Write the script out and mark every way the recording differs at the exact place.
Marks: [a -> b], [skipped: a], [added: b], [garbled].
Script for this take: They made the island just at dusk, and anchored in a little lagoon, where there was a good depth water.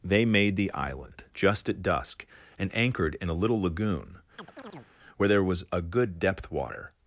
They made the island just at dusk, and anchored in a little lagoon, where there was a good depth water.